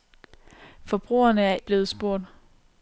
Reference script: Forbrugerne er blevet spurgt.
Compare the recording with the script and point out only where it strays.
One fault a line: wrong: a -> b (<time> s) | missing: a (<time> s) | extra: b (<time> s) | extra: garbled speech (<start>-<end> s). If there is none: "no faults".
no faults